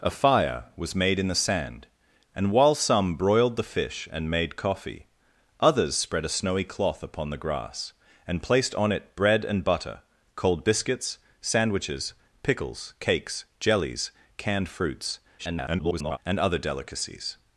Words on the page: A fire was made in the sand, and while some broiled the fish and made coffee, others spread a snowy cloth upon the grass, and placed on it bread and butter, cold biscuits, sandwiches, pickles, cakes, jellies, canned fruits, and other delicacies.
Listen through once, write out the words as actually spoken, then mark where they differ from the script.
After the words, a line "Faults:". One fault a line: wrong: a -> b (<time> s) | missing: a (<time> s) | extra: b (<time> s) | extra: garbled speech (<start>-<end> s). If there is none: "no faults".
A fire was made in the sand, and while some broiled the fish and made coffee, others spread a snowy cloth upon the grass, and placed on it bread and butter, cold biscuits, sandwiches, pickles, cakes, jellies, canned fruits, [garbled] and other delicacies.
Faults:
extra: garbled speech (15.4-16.2 s)